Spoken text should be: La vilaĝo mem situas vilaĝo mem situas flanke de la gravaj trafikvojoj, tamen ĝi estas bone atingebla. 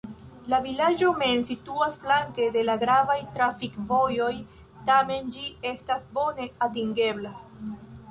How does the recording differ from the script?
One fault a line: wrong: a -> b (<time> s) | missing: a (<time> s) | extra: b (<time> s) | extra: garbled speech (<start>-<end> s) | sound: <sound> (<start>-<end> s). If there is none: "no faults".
missing: vilaĝo mem situas (2.0 s)